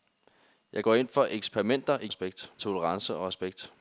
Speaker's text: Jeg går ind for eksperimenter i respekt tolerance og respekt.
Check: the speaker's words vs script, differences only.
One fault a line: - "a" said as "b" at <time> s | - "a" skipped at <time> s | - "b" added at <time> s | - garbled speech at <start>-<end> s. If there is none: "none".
none